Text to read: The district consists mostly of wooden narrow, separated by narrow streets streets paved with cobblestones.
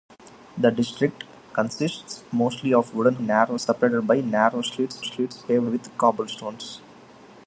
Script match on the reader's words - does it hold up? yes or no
yes